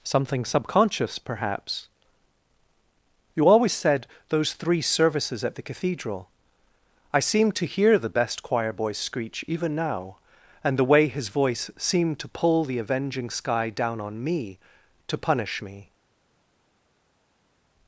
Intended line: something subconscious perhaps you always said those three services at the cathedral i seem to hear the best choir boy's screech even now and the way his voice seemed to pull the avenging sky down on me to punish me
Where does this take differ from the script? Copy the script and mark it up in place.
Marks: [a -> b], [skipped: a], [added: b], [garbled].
something subconscious perhaps you always said those three services at the cathedral i seem to hear the best choir boy's screech even now and the way his voice seemed to pull the avenging sky down on me to punish me